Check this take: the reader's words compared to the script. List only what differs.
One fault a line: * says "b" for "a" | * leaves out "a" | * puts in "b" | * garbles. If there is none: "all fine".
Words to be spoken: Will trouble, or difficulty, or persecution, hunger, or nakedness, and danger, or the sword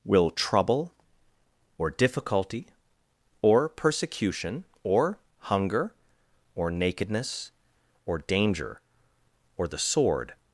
* puts in "or"
* says "or" for "and"